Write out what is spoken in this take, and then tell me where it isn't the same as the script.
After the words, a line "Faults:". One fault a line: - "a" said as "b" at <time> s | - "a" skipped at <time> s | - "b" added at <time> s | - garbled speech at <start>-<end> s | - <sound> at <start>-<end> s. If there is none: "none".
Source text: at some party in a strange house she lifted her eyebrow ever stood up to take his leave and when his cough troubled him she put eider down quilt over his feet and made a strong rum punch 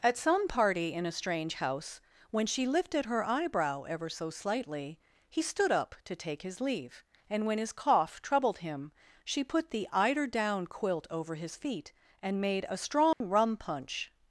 at some party in a strange house when she lifted her eyebrow ever so slightly he stood up to take his leave and when his cough troubled him she put the eider down quilt over his feet and made a strong rum punch
Faults:
- "when" added at 2.3 s
- "so slightly he" added at 4.1 s
- "the" added at 9.7 s
- dropout at 13.1-13.2 s